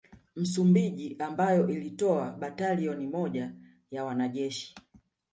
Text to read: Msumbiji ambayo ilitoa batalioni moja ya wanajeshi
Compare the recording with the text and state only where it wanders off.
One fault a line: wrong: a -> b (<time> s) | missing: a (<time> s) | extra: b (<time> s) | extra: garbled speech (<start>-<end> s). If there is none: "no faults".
no faults